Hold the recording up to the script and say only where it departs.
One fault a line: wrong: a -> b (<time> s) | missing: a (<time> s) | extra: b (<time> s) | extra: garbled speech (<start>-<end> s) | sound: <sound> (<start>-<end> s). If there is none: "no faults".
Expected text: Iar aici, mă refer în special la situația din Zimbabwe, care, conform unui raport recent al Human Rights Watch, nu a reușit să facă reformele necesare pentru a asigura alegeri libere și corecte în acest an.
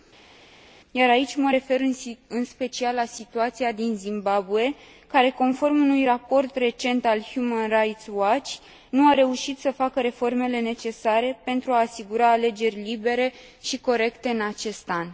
no faults